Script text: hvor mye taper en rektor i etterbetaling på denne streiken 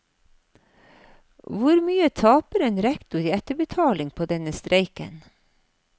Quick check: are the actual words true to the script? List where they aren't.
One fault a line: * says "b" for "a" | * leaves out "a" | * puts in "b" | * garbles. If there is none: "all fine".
all fine